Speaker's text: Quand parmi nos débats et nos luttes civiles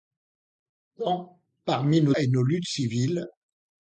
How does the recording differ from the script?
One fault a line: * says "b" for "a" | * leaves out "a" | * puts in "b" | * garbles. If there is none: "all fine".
* leaves out "débats"